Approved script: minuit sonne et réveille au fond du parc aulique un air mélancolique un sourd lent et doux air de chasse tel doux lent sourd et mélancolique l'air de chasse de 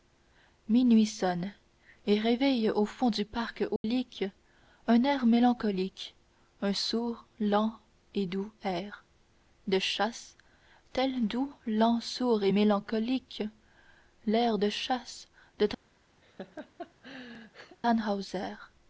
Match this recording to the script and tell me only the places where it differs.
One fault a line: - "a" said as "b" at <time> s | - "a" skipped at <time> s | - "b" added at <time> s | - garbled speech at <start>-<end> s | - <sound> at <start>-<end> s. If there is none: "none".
- dropout at 3.8-3.8 s
- laugh at 16.2-17.8 s